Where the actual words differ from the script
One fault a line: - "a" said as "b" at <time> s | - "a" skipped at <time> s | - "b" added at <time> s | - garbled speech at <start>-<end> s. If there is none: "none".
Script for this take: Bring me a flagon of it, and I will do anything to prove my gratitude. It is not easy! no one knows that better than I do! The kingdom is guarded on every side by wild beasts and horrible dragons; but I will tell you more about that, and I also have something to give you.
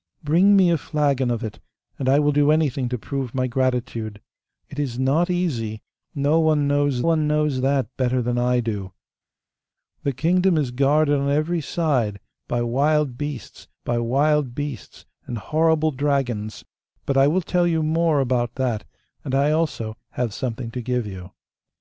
- "one knows" added at 7.0 s
- "by wild beasts" added at 13.9 s